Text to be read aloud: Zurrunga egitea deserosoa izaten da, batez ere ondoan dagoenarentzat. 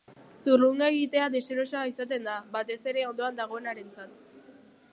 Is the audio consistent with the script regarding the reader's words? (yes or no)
yes